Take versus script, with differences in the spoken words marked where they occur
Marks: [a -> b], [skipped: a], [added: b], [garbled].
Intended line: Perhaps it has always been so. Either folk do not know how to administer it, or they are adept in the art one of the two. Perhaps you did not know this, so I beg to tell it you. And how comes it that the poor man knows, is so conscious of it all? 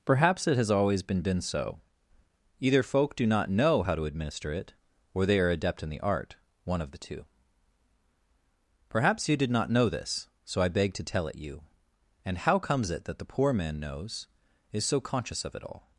Perhaps it has always been [added: been] so. Either folk do not know how to administer it, or they are adept in the art one of the two. Perhaps you did not know this, so I beg to tell it you. And how comes it that the poor man knows, is so conscious of it all?